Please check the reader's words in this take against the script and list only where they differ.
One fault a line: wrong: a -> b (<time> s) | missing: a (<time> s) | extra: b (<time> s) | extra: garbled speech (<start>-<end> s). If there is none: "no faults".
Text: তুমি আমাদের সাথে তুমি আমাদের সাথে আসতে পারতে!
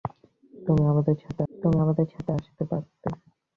no faults